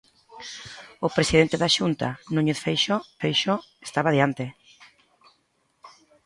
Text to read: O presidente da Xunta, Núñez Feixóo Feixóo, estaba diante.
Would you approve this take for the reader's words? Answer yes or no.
yes